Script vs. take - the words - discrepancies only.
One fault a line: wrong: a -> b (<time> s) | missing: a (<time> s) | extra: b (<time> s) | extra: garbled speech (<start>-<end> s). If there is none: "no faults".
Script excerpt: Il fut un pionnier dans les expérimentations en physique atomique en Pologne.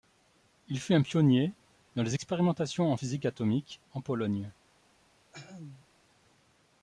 no faults